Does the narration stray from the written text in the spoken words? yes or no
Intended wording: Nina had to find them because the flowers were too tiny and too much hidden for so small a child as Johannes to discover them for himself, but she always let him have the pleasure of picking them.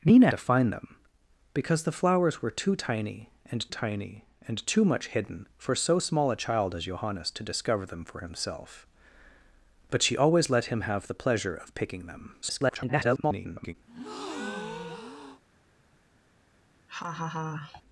yes